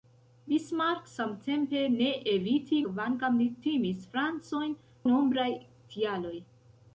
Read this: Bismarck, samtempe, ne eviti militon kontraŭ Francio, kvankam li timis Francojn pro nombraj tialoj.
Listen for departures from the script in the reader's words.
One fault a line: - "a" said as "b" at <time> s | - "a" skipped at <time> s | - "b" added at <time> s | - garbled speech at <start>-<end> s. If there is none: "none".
- "militon kontraŭ Francio" skipped at 2.8 s
- "pro" skipped at 4.8 s